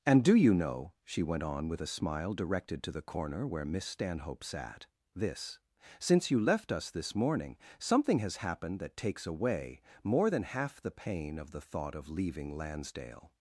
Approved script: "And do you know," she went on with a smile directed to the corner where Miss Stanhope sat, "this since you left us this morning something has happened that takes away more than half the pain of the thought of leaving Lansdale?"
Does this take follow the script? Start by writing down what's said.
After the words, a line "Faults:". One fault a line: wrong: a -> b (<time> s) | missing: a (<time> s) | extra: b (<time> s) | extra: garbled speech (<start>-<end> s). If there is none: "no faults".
"And do you know," she went on with a smile directed to the corner where Miss Stanhope sat, "this since you left us this morning something has happened that takes away more than half the pain of the thought of leaving Lansdale?"
Faults:
no faults